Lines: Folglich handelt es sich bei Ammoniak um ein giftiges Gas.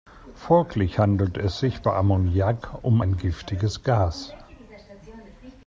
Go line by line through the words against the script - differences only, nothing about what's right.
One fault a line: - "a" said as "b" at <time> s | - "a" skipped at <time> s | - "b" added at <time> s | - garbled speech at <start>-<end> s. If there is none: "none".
none